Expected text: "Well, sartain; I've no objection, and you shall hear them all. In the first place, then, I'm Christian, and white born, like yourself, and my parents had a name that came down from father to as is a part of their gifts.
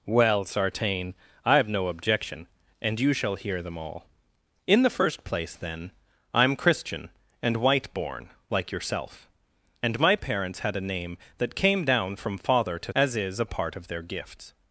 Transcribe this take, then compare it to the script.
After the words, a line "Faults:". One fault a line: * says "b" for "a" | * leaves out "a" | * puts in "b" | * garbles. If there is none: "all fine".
"Well, sartain; I've no objection, and you shall hear them all. In the first place, then, I'm Christian, and white born, like yourself, and my parents had a name that came down from father to as is a part of their gifts.
Faults:
all fine